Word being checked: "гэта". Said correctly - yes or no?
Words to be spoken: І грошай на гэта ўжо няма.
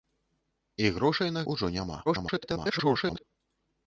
no